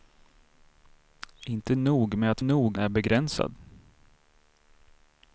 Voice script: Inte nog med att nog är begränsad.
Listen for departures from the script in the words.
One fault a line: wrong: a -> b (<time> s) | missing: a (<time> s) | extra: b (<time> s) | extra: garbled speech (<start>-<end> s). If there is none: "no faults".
no faults